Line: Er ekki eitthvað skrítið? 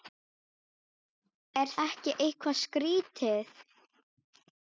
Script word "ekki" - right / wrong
right